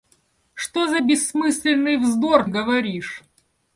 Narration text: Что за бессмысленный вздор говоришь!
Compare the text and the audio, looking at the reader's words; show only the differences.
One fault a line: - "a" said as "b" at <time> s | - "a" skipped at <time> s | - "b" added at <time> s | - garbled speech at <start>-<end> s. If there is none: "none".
none